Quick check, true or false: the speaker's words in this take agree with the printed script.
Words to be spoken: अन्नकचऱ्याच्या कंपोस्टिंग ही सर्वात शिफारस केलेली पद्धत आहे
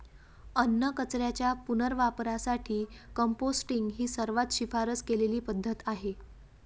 false